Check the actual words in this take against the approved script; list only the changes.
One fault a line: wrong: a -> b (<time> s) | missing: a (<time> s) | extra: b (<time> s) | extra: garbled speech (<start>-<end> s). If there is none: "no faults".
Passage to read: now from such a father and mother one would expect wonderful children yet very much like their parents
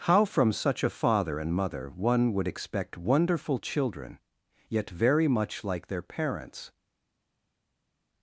wrong: now -> how (0.1 s)